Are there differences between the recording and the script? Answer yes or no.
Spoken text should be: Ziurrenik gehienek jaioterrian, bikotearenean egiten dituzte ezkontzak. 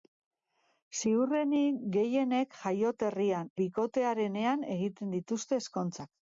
no